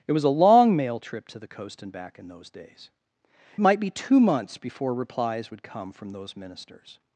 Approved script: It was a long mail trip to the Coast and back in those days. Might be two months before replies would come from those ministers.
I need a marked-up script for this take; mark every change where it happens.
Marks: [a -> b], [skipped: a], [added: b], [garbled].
It was a long mail trip to the Coast and back in those days. Might be two months before replies would come from those ministers.